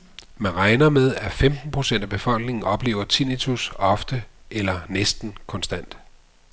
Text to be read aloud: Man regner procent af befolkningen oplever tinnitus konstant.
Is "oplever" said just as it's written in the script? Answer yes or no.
yes